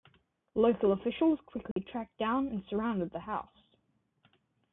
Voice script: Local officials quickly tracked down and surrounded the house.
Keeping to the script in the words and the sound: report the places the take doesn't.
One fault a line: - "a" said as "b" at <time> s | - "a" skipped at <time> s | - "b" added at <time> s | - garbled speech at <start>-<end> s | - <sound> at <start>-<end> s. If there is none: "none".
- dropout at 1.7-1.8 s